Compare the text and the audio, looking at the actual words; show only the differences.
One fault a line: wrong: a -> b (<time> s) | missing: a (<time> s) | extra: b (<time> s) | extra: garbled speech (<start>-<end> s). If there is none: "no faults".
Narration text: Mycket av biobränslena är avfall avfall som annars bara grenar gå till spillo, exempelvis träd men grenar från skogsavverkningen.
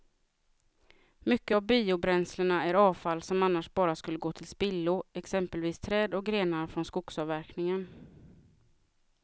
missing: avfall (3.2 s)
wrong: grenar -> skulle (4.0 s)
wrong: men -> och (6.1 s)